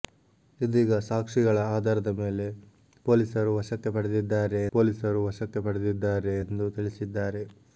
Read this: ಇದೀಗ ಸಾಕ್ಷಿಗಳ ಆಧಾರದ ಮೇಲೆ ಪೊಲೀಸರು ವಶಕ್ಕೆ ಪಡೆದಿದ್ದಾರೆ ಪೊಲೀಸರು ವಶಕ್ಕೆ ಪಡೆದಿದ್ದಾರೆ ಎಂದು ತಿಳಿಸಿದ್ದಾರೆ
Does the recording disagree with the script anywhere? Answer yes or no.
no